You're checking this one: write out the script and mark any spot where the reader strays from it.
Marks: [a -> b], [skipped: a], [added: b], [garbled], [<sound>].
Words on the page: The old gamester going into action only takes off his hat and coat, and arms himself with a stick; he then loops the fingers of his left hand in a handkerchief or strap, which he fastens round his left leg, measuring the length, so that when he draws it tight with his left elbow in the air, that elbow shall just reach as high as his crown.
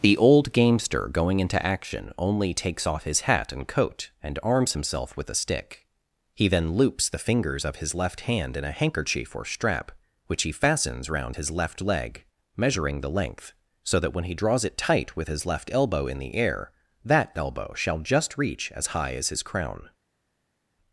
The old gamester going into action only takes off his hat and coat, and arms himself with a stick; he then loops the fingers of his left hand in a handkerchief or strap, which he fastens round his left leg, measuring the length, so that when he draws it tight with his left elbow in the air, that elbow shall just reach as high as his crown.